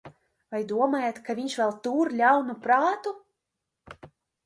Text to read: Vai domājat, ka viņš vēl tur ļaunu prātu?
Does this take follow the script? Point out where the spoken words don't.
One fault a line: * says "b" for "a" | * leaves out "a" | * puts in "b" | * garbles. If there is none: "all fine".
all fine